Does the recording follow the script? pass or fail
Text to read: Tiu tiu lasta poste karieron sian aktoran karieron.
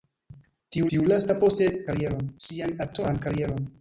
pass